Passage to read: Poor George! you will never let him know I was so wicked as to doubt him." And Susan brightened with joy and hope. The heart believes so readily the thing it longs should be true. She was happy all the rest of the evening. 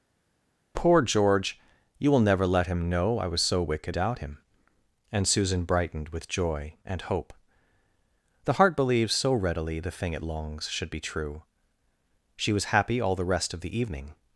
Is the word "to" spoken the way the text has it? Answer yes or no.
no